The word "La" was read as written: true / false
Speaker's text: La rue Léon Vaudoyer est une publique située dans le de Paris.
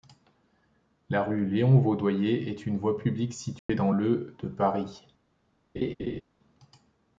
true